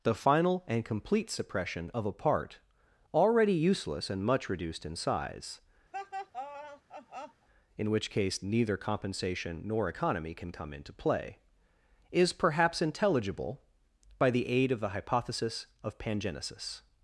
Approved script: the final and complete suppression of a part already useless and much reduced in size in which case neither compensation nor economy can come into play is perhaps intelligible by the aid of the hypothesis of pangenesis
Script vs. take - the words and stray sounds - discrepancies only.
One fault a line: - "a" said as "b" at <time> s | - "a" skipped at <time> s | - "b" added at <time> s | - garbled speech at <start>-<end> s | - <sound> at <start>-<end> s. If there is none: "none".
- laugh at 5.9-7.5 s